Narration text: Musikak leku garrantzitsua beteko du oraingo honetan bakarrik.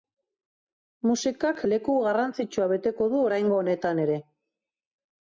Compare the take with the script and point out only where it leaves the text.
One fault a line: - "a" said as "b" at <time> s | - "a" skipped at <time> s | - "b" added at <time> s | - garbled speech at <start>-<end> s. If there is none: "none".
- "bakarrik" said as "ere" at 4.1 s